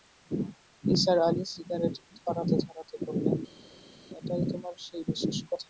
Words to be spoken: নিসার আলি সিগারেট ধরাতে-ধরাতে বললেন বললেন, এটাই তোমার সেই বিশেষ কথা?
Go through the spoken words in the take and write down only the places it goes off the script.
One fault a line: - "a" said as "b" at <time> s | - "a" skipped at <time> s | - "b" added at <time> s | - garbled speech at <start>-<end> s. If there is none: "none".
- "বললেন" skipped at 3.4 s